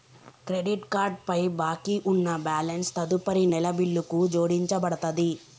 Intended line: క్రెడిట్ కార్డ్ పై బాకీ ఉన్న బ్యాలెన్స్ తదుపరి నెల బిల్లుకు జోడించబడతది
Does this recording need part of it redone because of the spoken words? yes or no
no